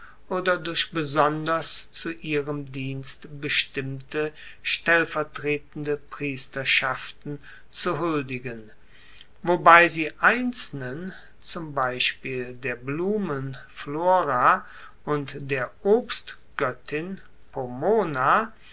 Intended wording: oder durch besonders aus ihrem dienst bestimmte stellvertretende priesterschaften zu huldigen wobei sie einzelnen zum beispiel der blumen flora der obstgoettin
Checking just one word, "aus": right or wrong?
wrong